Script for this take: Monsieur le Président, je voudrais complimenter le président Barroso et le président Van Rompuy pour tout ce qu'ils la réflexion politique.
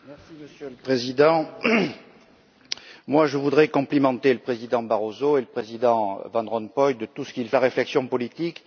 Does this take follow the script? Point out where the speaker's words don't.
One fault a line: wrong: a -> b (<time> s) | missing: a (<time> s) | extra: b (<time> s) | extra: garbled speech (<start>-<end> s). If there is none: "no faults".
no faults